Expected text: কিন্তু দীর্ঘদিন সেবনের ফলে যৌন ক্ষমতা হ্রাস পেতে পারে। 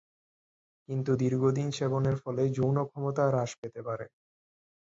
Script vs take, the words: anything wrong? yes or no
no